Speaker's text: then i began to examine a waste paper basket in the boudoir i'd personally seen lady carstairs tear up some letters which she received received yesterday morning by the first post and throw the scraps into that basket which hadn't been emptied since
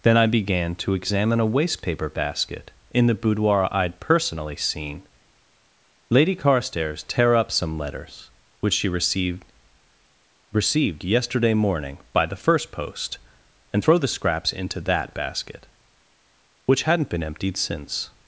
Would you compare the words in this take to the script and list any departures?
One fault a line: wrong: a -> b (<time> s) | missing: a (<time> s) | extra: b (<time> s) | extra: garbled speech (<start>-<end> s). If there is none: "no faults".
no faults